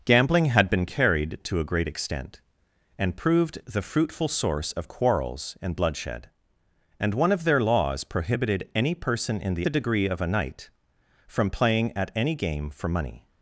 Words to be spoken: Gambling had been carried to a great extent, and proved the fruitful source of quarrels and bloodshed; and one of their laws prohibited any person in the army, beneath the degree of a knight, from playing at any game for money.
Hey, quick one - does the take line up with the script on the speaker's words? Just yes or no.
no